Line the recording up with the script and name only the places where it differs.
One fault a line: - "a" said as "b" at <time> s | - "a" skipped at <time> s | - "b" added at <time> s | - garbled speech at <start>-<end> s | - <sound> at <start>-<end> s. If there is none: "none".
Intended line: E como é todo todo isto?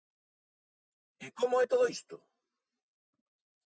- "todo" skipped at 1.9 s